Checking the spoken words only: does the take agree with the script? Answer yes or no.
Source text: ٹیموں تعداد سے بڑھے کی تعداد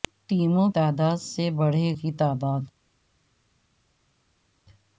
yes